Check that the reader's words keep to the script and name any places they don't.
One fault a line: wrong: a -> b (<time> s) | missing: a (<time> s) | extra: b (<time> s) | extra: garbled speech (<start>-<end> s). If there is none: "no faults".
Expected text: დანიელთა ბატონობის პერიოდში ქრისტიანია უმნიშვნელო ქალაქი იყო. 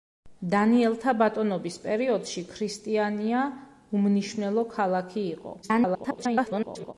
extra: garbled speech (5.6-6.9 s)